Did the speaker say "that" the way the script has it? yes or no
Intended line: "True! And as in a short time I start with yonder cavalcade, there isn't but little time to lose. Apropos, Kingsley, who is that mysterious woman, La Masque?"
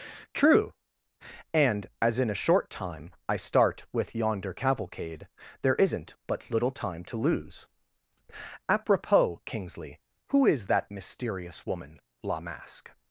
yes